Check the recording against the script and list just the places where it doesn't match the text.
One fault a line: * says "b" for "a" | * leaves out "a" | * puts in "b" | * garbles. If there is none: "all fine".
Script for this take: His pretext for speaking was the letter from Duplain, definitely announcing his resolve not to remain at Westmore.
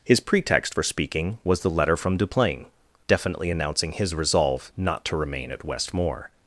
all fine